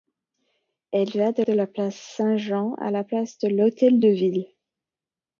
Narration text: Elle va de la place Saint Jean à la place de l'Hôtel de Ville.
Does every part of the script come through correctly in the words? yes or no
no